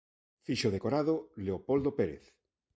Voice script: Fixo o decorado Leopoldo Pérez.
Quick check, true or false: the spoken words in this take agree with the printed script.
true